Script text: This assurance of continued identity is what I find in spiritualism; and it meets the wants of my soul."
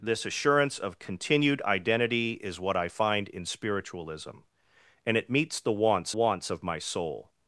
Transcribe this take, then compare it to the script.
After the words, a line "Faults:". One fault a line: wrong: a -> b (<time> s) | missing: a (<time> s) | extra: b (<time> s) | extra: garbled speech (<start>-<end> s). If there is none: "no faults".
This assurance of continued identity is what I find in spiritualism; and it meets the wants wants of my soul."
Faults:
extra: wants (6.1 s)